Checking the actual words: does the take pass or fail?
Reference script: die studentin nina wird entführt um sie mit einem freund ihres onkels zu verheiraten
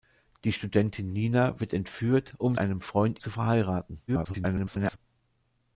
fail